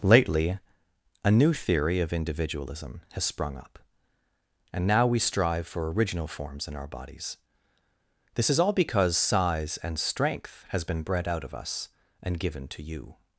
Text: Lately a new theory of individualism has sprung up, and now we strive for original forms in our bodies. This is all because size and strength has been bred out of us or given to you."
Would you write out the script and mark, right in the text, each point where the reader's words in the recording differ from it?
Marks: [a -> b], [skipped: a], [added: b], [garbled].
Lately a new theory of individualism has sprung up, and now we strive for original forms in our bodies. This is all because size and strength has been bred out of us [or -> and] given to you."